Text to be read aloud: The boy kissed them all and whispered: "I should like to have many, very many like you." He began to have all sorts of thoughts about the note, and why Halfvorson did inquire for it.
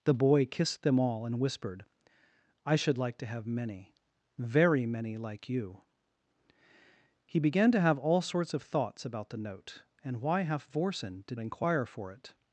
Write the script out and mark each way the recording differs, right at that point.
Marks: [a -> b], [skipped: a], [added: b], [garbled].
The boy kissed them all and whispered: "I should like to have many, very many like you." He began to have all sorts of thoughts about the note, and why Halfvorson did inquire for it.